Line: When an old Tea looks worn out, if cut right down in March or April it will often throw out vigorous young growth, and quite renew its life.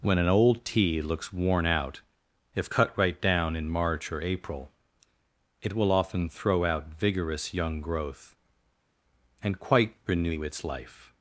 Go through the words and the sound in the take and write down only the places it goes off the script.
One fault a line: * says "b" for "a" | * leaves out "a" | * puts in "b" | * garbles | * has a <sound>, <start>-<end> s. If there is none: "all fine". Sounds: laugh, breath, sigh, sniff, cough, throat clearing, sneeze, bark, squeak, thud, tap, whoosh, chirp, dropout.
all fine